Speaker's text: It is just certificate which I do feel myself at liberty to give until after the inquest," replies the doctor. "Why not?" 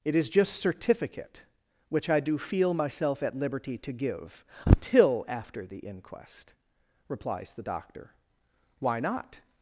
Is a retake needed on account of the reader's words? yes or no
no